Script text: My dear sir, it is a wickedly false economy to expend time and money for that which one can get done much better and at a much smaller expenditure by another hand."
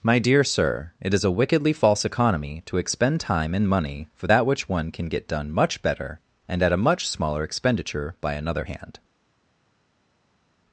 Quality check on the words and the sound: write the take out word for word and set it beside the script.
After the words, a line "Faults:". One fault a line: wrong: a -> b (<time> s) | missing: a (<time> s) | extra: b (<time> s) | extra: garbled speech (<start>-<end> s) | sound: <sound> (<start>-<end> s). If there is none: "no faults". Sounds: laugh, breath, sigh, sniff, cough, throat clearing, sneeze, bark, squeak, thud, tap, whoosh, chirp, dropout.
My dear sir, it is a wickedly false economy to expend time and money for that which one can get done much better and at a much smaller expenditure by another hand."
Faults:
no faults